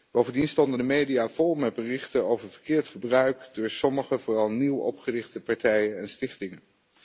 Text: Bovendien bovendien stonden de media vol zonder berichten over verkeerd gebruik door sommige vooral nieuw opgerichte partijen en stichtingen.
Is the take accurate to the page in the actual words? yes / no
no